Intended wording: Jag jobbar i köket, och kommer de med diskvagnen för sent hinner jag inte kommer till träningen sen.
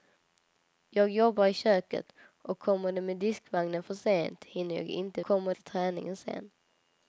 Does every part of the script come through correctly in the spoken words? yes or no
yes